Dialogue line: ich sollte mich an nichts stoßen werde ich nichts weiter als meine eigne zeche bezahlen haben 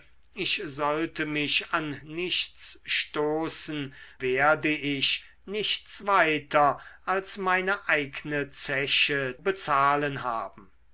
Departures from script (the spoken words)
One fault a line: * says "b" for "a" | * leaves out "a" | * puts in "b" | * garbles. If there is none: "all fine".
all fine